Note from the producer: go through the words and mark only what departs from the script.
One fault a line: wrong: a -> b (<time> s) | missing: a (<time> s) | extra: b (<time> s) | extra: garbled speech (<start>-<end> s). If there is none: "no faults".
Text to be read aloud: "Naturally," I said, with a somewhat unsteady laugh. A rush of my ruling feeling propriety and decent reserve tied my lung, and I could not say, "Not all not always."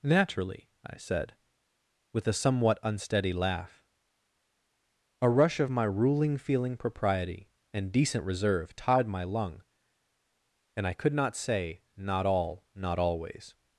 no faults